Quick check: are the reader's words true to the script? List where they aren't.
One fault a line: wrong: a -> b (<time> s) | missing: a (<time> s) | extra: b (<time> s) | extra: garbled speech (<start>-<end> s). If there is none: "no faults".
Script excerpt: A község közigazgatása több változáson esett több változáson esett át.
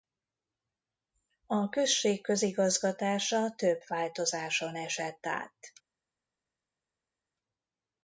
missing: több változáson esett (5.3 s)